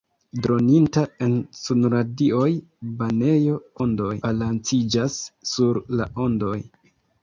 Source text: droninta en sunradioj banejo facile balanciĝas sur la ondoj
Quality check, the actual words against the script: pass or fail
fail